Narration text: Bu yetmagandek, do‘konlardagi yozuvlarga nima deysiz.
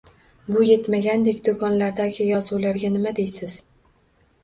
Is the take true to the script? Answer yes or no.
yes